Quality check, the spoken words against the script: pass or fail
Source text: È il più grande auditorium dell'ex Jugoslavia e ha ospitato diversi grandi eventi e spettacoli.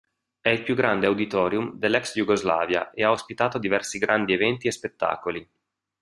pass